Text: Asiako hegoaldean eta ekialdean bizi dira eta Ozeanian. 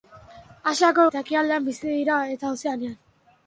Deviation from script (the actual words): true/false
true